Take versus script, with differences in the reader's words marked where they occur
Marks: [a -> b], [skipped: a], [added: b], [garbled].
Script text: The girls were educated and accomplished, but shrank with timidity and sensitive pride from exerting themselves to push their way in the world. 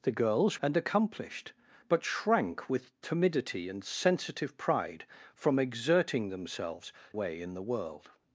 The girls [skipped: were educated] and accomplished, but shrank with timidity and sensitive pride from exerting themselves [skipped: to push their] way in the world.